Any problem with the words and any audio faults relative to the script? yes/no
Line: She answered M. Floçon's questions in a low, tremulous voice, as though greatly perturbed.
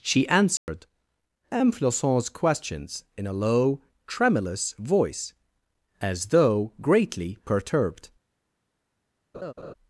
yes